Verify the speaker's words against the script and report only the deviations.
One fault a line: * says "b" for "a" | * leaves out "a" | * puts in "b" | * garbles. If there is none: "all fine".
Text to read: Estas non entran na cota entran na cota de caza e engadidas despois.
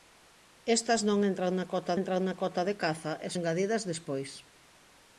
all fine